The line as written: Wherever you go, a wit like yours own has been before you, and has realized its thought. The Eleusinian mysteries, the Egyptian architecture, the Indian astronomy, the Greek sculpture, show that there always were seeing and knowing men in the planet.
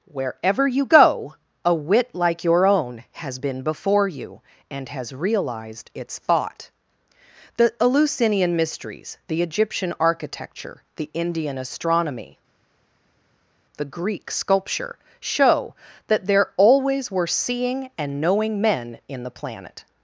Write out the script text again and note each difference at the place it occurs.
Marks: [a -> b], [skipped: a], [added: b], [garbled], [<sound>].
Wherever you go, a wit like [yours -> your] own has been before you, and has realized its thought. The Eleusinian mysteries, the Egyptian architecture, the Indian astronomy, the Greek sculpture, show that there always were seeing and knowing men in the planet.